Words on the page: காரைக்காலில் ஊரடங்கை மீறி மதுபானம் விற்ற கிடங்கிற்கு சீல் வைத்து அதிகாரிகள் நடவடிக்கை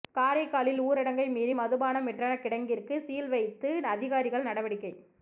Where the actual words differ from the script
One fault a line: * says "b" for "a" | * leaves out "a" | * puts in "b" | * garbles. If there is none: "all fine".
all fine